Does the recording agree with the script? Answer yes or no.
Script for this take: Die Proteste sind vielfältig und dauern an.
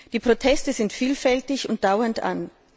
yes